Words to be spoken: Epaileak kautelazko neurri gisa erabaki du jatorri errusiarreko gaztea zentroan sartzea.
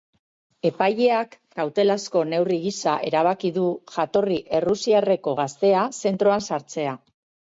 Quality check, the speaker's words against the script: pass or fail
pass